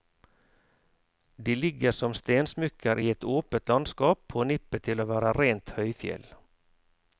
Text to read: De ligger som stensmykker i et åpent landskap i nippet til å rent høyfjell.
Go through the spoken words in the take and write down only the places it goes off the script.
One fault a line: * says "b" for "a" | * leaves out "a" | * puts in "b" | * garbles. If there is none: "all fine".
* says "på" for "i"
* puts in "være"